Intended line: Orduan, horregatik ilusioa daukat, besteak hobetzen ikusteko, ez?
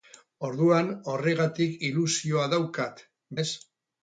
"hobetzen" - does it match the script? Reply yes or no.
no